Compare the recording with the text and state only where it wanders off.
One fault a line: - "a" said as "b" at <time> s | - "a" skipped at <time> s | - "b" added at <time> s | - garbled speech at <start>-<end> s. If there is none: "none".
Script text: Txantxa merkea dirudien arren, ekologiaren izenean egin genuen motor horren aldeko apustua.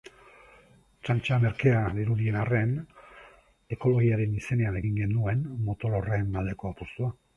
none